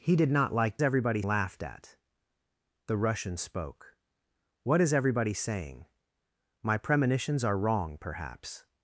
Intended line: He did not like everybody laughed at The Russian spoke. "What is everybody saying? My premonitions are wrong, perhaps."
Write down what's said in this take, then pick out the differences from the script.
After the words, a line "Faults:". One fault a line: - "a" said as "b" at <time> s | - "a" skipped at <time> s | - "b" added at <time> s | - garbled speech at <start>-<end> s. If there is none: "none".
He did not like everybody laughed at The Russian spoke. "What is everybody saying? My premonitions are wrong, perhaps."
Faults:
none